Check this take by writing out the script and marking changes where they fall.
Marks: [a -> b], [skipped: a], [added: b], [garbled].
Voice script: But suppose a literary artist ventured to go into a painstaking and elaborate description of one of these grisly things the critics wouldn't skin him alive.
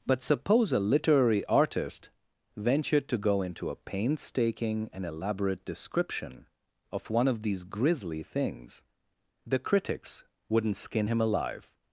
But suppose a literary artist ventured to go into a painstaking and elaborate description of one of these grisly things the critics wouldn't skin him alive.